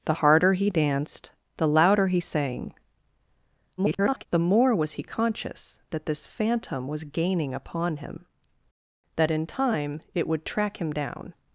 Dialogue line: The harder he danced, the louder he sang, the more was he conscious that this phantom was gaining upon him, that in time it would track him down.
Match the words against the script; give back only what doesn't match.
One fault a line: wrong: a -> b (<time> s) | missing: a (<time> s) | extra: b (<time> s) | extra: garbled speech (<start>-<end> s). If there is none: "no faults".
extra: garbled speech (3.8-4.3 s)